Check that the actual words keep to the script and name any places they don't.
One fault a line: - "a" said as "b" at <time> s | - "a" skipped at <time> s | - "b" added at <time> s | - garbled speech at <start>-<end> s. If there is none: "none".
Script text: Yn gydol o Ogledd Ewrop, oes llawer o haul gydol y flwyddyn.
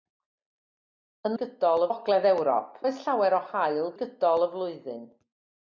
none